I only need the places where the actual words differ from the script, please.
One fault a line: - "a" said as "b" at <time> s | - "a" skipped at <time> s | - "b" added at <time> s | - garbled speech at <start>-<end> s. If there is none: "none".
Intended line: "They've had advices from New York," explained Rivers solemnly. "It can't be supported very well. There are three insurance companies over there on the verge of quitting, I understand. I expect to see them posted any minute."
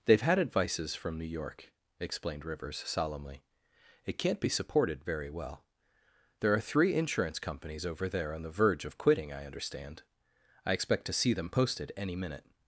none